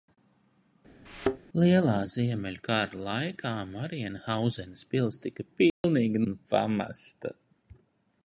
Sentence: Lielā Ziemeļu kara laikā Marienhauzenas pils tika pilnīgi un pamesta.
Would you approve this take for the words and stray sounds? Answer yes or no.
no